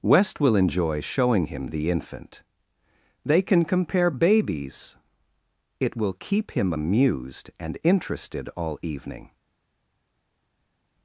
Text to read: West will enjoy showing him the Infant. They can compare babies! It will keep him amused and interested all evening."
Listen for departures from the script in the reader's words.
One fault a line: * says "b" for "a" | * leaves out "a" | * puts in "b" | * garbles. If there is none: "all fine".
all fine